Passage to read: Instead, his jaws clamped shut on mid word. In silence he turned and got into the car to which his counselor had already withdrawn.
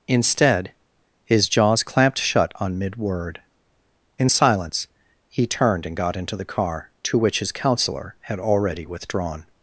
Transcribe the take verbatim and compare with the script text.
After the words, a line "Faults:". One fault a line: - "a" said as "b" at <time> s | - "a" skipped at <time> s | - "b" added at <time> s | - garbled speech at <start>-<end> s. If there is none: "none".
Instead, his jaws clamped shut on mid word. In silence he turned and got into the car to which his counselor had already withdrawn.
Faults:
none